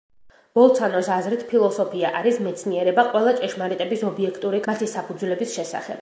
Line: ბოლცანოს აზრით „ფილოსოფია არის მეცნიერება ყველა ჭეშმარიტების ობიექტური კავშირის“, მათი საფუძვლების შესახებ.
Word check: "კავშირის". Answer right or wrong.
wrong